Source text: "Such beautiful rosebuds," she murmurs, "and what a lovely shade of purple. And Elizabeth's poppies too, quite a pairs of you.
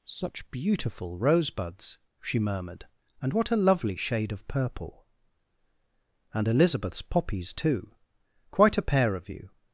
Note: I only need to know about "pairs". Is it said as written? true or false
false